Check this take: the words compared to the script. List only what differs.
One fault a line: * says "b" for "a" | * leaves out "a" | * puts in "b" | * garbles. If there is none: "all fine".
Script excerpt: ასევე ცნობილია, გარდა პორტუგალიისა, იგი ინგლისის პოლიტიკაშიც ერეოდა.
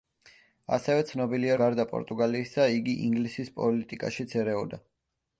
all fine